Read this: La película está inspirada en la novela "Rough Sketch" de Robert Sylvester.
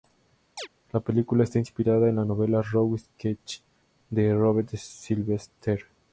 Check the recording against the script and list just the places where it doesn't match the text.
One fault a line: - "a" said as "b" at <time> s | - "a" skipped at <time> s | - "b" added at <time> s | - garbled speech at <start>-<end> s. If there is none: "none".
none